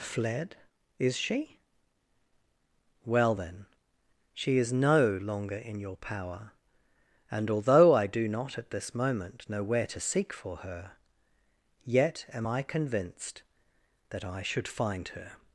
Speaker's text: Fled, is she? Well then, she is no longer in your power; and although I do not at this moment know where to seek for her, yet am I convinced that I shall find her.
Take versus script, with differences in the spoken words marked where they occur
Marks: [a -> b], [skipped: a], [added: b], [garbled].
Fled, is she? Well then, she is no longer in your power; and although I do not at this moment know where to seek for her, yet am I convinced that I [shall -> should] find her.